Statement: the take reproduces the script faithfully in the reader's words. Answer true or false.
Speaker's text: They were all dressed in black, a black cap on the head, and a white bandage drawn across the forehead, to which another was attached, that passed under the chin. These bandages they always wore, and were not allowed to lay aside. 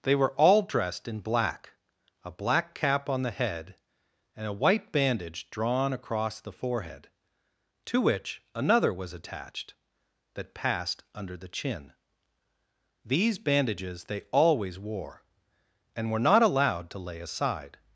true